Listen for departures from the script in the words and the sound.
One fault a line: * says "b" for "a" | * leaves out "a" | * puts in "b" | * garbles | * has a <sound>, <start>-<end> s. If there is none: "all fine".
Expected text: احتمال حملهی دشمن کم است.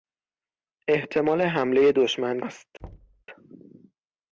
* leaves out "کم"
* has a thud, 2.8-3.2 s